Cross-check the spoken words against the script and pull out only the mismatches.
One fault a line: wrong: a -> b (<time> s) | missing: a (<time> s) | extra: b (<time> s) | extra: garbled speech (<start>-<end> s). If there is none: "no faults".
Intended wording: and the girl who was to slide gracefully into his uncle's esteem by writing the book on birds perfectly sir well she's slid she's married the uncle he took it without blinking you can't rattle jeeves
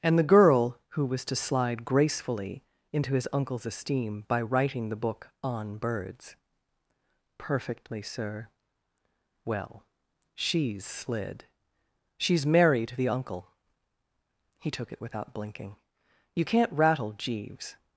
no faults